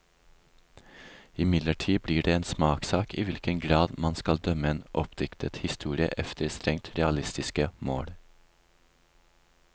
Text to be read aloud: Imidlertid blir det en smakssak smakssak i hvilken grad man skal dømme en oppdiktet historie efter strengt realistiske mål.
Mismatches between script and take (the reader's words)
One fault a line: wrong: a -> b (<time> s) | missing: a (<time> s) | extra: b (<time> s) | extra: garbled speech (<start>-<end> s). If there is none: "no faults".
missing: smakssak (3.1 s)